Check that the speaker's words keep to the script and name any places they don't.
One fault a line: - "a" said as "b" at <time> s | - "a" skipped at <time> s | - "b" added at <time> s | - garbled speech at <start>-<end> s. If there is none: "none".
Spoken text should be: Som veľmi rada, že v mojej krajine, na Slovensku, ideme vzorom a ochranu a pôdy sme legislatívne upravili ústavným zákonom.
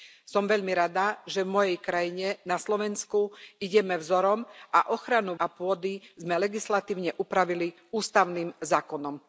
none